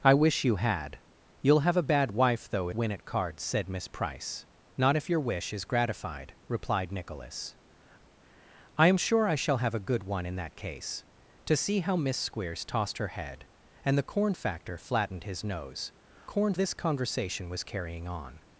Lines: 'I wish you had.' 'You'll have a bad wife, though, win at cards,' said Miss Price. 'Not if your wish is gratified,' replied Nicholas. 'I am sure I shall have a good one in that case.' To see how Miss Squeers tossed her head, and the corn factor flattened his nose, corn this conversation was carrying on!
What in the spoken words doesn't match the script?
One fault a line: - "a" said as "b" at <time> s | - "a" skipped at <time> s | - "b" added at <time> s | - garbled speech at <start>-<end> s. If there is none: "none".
none